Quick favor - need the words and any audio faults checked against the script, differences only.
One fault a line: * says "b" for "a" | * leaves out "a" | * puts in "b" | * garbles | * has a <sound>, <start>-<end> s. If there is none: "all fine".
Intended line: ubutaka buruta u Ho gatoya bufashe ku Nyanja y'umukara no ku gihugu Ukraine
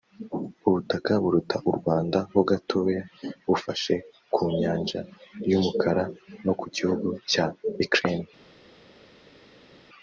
* puts in "Rwanda"
* puts in "cya"